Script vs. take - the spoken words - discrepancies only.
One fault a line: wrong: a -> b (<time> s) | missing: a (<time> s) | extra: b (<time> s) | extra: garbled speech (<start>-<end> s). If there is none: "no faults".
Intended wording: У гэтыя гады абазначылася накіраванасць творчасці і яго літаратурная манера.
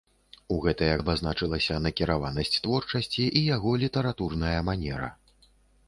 missing: гады (0.9 s)